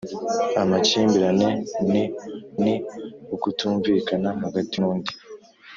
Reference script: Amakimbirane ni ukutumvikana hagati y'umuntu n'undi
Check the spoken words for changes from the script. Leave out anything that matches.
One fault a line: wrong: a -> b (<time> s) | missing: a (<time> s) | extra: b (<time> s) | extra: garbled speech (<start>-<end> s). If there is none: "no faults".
extra: ni (2.6 s)
missing: y'umuntu (4.7 s)